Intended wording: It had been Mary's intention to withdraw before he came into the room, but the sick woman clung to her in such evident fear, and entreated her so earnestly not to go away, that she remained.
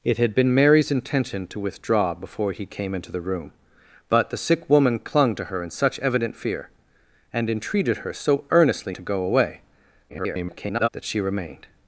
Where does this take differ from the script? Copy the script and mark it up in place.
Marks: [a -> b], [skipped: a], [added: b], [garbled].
It had been Mary's intention to withdraw before he came into the room, but the sick woman clung to her in such evident fear, and entreated her so earnestly [skipped: not] to go away, [garbled] that she remained.